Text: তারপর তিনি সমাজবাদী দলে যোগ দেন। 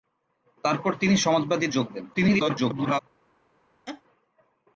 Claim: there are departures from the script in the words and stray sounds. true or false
true